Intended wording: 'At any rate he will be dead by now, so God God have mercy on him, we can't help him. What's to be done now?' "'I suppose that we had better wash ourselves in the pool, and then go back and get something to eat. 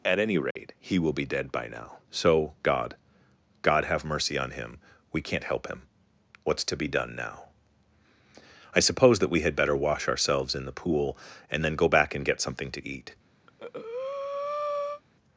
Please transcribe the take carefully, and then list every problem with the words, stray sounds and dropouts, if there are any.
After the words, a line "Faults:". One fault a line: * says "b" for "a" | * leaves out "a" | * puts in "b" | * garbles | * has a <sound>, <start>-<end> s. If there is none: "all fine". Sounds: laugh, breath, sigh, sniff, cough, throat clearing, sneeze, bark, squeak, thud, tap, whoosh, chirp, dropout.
'At any rate he will be dead by now, so God God have mercy on him, we can't help him. What's to be done now?' "'I suppose that we had better wash ourselves in the pool, and then go back and get something to eat.
Faults:
* has a dropout, 0.5-0.6 s
* has a breath, 13.5-15.0 s